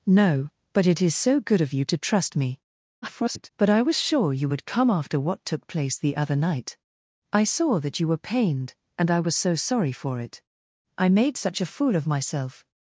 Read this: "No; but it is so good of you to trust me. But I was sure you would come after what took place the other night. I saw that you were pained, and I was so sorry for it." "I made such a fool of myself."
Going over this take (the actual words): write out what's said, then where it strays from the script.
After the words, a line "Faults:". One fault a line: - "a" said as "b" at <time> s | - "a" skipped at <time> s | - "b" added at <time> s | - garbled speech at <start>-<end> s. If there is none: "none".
"No; but it is so good of you to trust me. [garbled] But I was sure you would come after what took place the other night. I saw that you were pained, and I was so sorry for it." "I made such a fool of myself."
Faults:
- garbled speech at 3.0-3.5 s